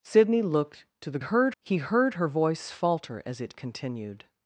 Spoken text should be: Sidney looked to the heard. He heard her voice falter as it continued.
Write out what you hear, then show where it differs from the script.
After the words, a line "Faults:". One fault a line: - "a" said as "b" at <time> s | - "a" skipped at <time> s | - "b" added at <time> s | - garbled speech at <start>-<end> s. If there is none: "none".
Sidney looked to the heard. He heard her voice falter as it continued.
Faults:
none